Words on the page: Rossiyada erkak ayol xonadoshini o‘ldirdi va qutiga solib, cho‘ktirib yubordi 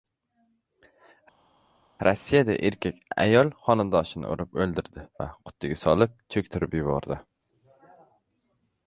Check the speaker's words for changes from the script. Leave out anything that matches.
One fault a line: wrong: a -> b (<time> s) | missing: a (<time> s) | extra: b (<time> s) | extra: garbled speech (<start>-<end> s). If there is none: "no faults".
extra: urib (4.3 s)